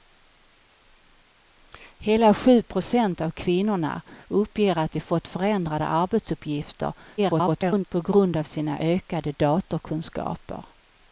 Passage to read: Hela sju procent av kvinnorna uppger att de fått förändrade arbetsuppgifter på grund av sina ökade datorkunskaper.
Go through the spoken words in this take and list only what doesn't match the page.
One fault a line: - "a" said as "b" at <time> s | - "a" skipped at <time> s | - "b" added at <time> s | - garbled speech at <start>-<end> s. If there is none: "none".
- garbled speech at 7.2-7.9 s